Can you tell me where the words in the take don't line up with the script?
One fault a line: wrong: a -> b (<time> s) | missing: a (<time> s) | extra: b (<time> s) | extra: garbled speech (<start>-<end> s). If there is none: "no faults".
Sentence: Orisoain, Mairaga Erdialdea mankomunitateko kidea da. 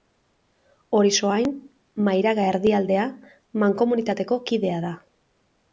no faults